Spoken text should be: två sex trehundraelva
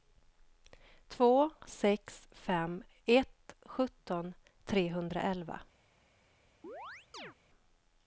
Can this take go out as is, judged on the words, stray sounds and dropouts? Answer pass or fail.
fail